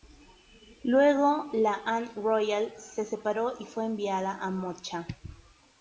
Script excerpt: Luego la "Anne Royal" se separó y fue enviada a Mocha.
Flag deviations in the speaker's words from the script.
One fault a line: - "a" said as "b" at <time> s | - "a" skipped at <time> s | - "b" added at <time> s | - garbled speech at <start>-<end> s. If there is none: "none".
none